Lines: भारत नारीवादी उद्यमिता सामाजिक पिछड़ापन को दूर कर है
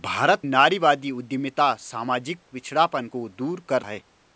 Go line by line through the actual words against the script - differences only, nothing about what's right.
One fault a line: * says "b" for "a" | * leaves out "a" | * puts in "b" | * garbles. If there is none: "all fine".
all fine